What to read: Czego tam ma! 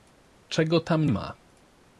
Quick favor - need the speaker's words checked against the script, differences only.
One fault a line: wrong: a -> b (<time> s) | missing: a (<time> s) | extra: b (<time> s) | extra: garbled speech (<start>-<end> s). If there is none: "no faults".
no faults